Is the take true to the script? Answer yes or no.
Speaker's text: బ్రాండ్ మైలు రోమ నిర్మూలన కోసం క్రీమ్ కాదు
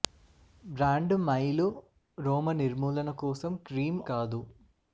yes